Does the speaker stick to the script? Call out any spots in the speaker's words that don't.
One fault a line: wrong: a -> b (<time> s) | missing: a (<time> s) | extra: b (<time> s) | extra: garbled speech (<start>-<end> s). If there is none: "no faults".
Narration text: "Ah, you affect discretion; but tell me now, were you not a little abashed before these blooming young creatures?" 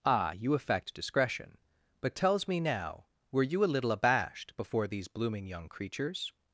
wrong: tell -> tells (2.2 s)
missing: not (3.6 s)